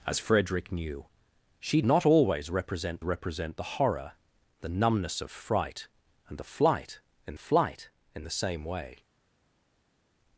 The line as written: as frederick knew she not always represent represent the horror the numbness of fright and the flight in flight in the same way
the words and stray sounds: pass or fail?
pass